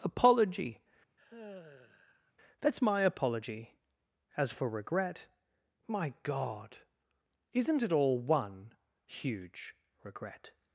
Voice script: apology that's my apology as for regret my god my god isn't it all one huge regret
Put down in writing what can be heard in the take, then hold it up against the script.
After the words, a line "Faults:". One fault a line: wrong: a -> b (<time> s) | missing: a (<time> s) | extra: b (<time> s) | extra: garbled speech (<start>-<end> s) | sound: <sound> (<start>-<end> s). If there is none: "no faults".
apology that's my apology as for regret my god isn't it all one huge regret
Faults:
sound: sigh (1.2-2.3 s)
missing: my god (6.8 s)